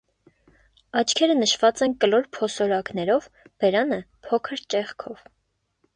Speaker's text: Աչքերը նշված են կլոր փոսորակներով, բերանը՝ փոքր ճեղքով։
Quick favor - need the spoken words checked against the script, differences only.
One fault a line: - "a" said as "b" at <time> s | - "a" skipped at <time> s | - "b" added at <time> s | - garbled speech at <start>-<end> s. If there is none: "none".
none